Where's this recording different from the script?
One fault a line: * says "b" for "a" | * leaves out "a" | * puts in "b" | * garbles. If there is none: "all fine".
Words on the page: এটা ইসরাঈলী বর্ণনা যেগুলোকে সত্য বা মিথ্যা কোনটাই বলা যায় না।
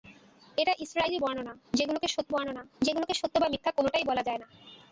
* puts in "বর্ণনা যেগুলোকে সত্য"